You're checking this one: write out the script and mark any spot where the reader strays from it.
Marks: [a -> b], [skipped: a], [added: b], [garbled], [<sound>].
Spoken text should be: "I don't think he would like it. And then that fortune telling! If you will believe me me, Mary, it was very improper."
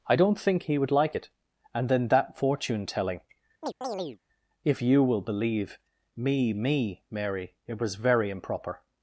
"I don't think he would like it. And then that fortune telling! [chirp] If you will believe me me, Mary, it was very improper."